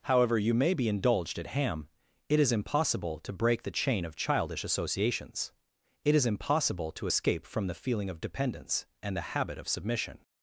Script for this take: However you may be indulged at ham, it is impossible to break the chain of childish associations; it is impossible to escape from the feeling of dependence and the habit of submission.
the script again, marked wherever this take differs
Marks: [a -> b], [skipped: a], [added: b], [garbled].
However you may be indulged at ham, it is impossible to break the chain of childish associations; it is impossible to escape from the feeling of dependence and the habit of submission.